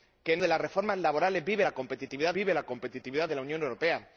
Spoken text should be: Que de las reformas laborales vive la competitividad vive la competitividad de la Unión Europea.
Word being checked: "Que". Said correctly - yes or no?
yes